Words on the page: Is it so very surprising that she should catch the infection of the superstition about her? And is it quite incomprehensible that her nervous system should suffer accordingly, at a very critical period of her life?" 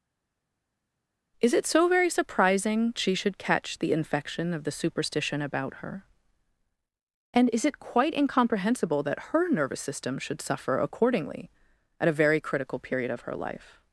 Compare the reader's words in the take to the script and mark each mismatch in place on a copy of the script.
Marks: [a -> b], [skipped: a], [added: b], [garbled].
Is it so very surprising [skipped: that] she should catch the infection of the superstition about her? And is it quite incomprehensible that her nervous system should suffer accordingly, at a very critical period of her life?"